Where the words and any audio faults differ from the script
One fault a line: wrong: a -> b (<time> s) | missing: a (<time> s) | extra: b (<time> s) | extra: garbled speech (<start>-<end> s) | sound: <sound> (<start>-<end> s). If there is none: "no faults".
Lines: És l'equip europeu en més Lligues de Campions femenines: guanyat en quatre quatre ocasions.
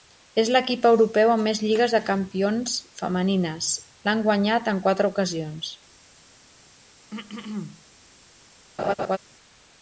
wrong: en -> amb (1.3 s)
extra: l'han (4.1 s)
missing: quatre (5.1 s)
sound: throat clearing (7.1-7.8 s)
sound: laugh (8.8-9.2 s)